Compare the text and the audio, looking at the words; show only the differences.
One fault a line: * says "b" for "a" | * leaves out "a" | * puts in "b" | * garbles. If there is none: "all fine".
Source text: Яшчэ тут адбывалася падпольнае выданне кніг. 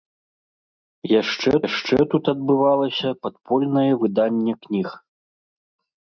* puts in "яшчэ"